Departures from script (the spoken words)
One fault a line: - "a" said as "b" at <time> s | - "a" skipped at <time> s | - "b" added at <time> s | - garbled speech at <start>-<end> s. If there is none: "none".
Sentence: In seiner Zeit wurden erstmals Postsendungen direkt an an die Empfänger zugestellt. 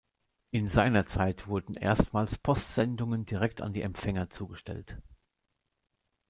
- "an" skipped at 3.7 s